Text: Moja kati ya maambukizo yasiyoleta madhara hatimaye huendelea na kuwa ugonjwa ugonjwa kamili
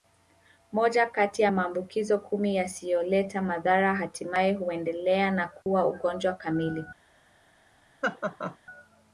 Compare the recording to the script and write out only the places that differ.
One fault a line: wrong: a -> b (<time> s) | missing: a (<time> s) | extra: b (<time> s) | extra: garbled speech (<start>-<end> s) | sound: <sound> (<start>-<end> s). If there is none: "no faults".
extra: kumi (2.2 s)
sound: dropout (5.6-5.7 s)
missing: ugonjwa (6.3 s)
sound: laugh (8.0-8.6 s)